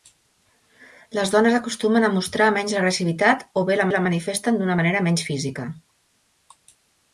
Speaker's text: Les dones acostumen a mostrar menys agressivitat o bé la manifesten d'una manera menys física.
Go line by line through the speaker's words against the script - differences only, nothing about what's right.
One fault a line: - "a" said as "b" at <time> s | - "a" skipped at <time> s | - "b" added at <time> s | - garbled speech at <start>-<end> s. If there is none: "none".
- "la" added at 3.9 s